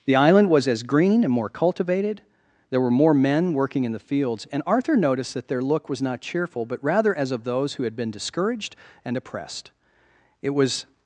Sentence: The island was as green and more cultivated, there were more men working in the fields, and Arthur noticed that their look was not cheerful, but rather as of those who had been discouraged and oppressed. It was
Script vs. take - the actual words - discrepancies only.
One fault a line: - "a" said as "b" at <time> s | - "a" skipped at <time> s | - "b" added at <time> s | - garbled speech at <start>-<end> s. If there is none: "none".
none